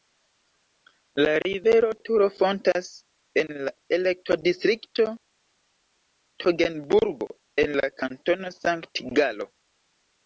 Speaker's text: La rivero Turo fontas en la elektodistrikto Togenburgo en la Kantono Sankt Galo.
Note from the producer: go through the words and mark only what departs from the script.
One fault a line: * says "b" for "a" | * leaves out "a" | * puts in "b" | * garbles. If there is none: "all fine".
all fine